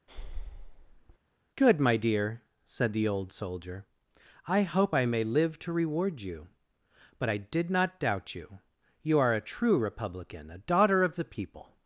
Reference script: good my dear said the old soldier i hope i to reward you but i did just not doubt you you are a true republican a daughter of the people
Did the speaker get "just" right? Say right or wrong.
wrong